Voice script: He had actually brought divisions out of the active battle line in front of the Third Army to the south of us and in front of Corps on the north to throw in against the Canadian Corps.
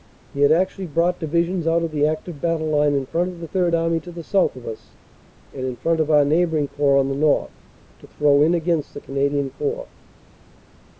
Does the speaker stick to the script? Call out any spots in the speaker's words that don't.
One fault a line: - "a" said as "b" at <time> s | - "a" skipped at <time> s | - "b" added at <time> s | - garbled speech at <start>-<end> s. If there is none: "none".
- "our neighboring" added at 6.1 s